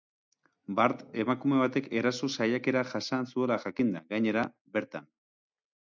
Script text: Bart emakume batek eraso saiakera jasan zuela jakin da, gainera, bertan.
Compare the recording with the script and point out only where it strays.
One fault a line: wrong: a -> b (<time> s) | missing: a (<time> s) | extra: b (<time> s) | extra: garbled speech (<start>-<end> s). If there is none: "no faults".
no faults